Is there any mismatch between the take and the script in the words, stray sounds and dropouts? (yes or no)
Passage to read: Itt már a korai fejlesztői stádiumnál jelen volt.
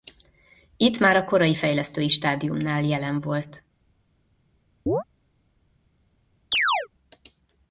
yes